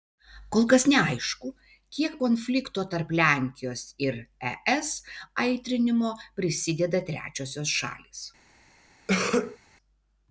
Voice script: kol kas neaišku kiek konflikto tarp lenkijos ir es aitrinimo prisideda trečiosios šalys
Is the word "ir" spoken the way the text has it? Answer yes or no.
yes